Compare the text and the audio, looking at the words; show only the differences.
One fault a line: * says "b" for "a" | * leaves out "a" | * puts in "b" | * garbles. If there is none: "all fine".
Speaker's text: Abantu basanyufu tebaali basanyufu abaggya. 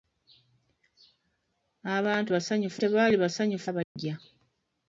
all fine